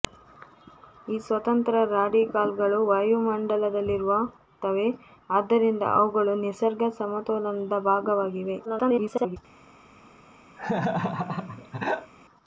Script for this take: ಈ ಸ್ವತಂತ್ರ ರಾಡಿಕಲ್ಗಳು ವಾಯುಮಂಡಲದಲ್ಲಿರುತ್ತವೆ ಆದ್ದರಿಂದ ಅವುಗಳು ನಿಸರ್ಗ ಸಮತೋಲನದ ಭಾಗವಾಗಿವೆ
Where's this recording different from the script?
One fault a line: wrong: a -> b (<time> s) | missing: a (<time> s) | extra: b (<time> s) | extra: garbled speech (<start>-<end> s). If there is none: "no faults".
extra: garbled speech (8.6-9.4 s)